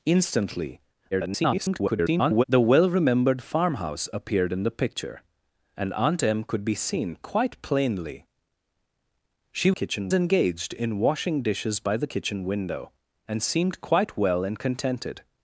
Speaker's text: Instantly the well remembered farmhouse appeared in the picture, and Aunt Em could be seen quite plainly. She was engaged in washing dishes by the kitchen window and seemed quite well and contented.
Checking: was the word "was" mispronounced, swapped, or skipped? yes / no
yes